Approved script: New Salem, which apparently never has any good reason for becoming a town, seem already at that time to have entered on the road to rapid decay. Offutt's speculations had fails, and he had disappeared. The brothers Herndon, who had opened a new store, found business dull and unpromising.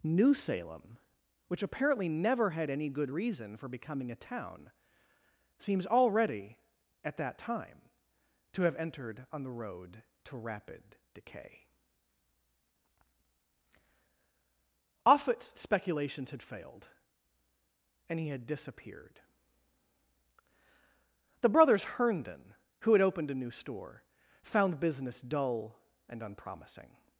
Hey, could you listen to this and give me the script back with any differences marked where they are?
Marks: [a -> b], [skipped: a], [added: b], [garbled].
New Salem, which apparently never [has -> had] any good reason for becoming a town, [seem -> seems] already at that time to have entered on the road to rapid decay. Offutt's speculations had [fails, -> failed] and he had disappeared. The brothers Herndon, who had opened a new store, found business dull and unpromising.